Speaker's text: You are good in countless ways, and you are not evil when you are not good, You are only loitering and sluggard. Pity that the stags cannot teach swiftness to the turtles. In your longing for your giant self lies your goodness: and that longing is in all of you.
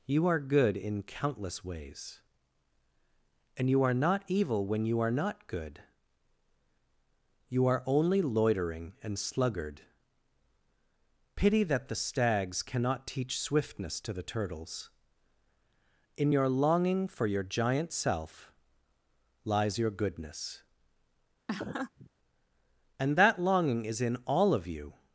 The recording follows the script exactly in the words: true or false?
true